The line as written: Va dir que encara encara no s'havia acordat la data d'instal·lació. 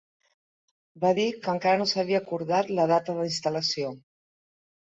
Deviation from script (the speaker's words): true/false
true